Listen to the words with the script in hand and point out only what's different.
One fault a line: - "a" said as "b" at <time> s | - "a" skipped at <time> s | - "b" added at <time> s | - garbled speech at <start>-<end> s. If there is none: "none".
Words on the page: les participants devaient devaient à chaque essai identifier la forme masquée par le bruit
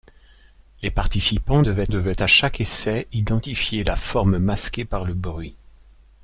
none